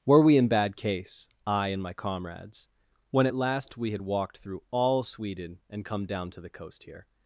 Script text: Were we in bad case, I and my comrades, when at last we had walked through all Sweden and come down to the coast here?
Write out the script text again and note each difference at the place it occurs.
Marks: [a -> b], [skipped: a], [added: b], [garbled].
Were we in bad case, I and my comrades, when at last we had walked through all Sweden and come down to the coast here?